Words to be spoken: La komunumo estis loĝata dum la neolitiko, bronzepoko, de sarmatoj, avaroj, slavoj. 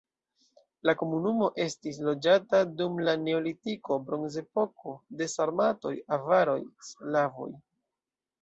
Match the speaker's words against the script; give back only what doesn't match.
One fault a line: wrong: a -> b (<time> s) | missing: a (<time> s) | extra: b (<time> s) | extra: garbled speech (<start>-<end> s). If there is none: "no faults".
no faults